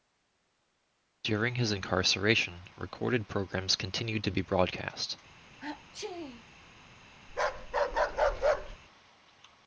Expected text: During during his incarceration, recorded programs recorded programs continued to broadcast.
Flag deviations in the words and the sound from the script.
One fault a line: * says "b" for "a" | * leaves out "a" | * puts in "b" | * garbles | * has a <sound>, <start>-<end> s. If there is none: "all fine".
* leaves out "during"
* leaves out "recorded programs"
* puts in "be"
* has a sneeze, 5.6-6.4 s
* has a bark, 7.3-8.8 s